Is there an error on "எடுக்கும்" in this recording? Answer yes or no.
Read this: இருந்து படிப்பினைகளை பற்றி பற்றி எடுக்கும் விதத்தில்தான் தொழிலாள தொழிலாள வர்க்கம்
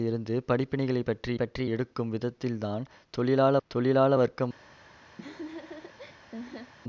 no